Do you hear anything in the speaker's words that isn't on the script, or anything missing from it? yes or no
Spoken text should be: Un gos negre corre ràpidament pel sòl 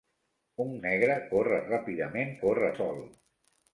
yes